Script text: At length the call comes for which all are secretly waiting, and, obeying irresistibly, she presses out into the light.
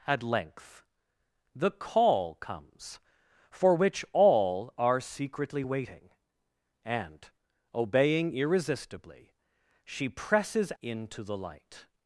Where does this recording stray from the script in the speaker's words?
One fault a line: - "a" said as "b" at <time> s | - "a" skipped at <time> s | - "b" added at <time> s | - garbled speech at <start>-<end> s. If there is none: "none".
- "out" skipped at 10.7 s